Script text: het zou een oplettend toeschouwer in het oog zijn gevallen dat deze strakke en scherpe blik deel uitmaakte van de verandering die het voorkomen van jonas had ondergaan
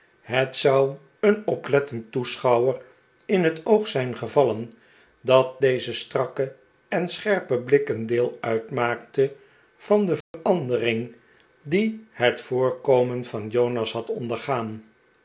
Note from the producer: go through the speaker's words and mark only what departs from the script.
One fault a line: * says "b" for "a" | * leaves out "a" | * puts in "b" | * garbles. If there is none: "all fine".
* puts in "een"